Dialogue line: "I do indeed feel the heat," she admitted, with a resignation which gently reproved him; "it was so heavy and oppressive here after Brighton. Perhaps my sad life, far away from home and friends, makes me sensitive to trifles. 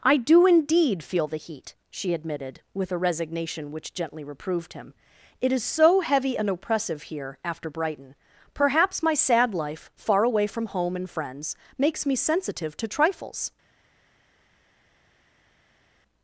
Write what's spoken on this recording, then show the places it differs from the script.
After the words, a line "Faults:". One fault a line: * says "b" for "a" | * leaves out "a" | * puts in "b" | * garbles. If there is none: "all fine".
"I do indeed feel the heat," she admitted, with a resignation which gently reproved him; "it is so heavy and oppressive here after Brighton. Perhaps my sad life, far away from home and friends, makes me sensitive to trifles.
Faults:
* says "is" for "was"